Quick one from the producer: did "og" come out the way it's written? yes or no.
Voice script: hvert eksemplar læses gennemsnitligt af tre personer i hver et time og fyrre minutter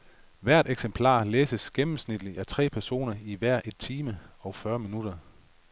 yes